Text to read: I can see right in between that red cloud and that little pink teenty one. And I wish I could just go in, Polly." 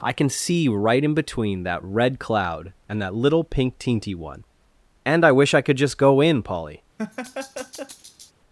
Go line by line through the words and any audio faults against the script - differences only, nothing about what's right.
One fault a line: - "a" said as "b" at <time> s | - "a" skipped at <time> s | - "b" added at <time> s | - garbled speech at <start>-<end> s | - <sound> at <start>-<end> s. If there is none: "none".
- laugh at 7.0-8.3 s